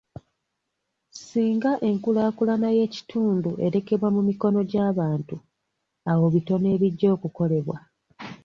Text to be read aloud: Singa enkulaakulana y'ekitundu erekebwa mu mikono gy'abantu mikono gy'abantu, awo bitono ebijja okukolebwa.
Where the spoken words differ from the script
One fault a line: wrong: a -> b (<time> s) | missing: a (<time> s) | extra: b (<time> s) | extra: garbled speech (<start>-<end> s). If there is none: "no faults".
missing: mikono gy'abantu (5.3 s)